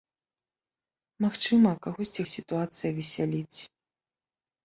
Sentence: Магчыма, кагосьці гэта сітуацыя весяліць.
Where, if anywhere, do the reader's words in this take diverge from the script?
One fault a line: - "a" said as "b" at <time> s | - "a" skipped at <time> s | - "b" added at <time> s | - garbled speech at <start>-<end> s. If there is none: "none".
- "гэта" skipped at 2.2 s